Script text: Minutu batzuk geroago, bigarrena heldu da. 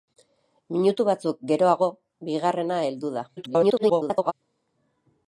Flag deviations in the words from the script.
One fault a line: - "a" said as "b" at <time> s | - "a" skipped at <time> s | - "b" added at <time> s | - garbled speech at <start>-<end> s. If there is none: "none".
- garbled speech at 3.4-4.3 s